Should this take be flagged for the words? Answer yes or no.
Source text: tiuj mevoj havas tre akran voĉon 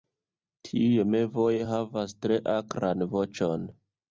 no